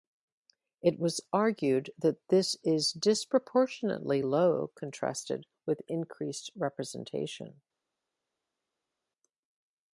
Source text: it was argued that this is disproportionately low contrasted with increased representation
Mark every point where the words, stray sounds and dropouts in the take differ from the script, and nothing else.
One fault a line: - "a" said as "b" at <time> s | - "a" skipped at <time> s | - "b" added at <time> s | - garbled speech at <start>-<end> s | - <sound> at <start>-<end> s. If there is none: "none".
none